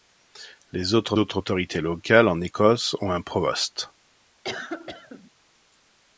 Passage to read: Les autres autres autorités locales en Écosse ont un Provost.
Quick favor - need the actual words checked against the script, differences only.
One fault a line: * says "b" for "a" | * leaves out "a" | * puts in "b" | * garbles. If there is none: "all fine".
all fine